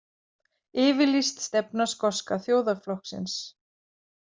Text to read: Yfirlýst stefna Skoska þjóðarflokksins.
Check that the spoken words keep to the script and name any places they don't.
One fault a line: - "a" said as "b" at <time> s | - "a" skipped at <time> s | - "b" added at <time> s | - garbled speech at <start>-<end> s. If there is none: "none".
none